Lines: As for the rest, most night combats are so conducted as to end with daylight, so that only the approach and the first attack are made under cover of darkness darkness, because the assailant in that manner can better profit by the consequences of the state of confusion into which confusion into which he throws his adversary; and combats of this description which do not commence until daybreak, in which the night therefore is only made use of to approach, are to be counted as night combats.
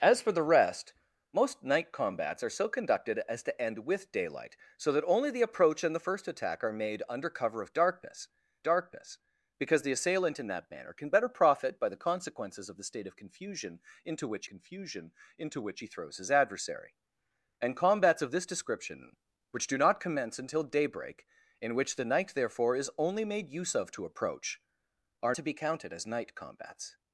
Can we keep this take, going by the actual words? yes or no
yes